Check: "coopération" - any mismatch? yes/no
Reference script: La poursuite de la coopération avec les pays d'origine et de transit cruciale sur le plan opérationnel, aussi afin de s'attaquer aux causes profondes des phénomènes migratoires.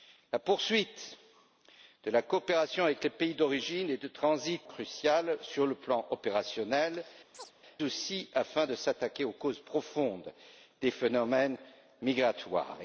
no